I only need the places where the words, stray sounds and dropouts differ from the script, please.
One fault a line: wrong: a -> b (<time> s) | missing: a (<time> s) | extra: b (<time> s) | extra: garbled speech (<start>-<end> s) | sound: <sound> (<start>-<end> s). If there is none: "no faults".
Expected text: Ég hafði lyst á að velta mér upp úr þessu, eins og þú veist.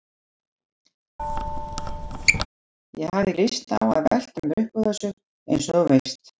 sound: squeak (1.2-2.5 s)